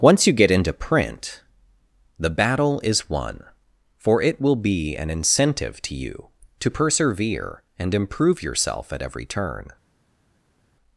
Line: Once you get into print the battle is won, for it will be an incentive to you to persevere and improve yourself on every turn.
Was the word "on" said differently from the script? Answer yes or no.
yes